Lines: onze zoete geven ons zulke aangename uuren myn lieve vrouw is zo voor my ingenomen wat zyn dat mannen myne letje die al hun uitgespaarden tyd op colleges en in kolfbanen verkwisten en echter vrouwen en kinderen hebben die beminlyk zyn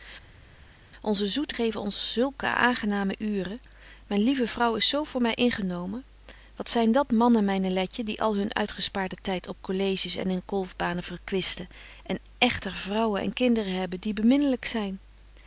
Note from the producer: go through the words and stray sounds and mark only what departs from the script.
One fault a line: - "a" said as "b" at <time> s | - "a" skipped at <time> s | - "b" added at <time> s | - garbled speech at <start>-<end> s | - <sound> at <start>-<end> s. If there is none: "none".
none